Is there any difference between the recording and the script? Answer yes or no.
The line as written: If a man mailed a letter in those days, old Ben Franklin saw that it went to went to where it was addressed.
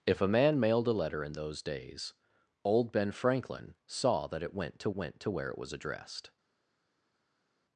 no